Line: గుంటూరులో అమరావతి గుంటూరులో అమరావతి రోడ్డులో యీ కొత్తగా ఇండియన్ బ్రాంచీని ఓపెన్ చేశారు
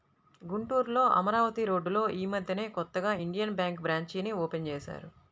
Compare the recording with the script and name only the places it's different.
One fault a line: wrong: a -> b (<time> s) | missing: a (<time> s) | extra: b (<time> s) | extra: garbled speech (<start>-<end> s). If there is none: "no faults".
missing: గుంటూరులో అమరావతి (1.6 s)
extra: మద్దెనే (2.3 s)
extra: బ్యేంకు (3.6 s)